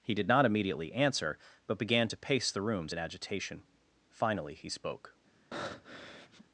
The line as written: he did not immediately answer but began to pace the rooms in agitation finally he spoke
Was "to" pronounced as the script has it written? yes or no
yes